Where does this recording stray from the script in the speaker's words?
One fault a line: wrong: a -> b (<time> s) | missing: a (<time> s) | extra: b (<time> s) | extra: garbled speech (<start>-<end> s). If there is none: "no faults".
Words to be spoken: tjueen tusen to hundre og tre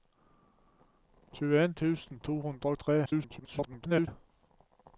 extra: garbled speech (3.1-4.1 s)